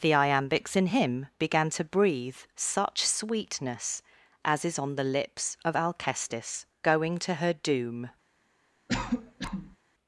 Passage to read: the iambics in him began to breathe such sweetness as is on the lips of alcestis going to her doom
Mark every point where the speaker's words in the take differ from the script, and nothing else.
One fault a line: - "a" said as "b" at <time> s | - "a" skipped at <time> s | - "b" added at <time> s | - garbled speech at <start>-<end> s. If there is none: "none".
none